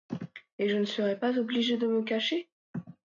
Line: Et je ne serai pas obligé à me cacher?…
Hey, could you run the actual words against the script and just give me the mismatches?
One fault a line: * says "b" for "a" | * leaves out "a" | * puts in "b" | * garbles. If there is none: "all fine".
* says "de" for "à"